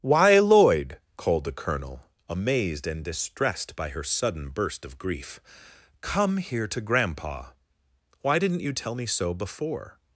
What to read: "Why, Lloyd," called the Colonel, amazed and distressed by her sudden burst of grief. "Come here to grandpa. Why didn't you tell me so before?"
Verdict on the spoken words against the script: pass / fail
pass